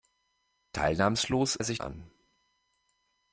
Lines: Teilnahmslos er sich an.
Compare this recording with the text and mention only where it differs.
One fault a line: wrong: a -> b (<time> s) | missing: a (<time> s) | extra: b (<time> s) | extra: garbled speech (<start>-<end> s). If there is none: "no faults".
no faults